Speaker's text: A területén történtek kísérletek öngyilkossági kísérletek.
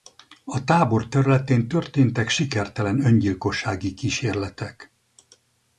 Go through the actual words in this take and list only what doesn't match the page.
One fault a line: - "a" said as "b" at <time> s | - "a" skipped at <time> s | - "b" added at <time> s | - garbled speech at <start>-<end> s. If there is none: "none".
- "tábor" added at 0.6 s
- "kísérletek" said as "sikertelen" at 2.3 s